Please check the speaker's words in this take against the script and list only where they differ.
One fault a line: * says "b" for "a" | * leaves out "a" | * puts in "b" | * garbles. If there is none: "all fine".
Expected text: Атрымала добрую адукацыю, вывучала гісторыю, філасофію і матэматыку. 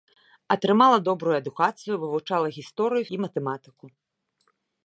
* leaves out "філасофію"